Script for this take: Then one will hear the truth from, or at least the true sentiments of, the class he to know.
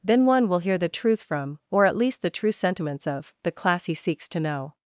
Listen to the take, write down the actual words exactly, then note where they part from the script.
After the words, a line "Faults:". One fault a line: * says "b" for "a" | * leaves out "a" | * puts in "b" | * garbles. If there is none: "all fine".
Then one will hear the truth from, or at least the true sentiments of, the class he seeks to know.
Faults:
* puts in "seeks"